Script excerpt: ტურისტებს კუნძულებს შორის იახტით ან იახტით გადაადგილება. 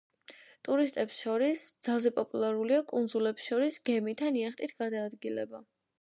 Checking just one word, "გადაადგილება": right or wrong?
right